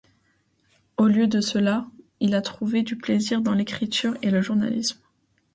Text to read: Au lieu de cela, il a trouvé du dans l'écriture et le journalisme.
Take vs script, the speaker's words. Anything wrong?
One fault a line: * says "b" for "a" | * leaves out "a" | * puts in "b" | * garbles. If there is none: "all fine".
* puts in "plaisir"